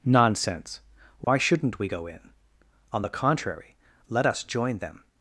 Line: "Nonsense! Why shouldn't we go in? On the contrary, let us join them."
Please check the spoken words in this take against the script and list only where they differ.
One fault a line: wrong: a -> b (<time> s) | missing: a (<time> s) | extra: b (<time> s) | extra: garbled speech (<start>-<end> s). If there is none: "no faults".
no faults